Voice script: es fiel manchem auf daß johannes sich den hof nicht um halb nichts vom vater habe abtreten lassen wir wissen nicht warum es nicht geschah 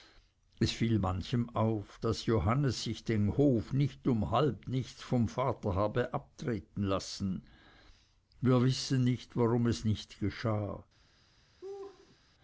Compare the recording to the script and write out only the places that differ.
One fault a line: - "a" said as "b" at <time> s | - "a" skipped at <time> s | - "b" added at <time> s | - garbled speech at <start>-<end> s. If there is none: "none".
none